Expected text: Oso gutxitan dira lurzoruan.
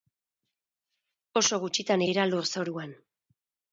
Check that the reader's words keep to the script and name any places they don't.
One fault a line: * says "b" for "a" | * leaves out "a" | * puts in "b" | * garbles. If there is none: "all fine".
all fine